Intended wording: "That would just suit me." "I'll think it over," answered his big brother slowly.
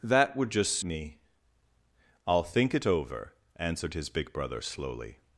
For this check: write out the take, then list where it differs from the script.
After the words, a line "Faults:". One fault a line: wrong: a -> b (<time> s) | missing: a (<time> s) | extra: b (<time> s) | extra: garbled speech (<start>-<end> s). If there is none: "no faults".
"That would just me." "I'll think it over," answered his big brother slowly.
Faults:
missing: suit (0.8 s)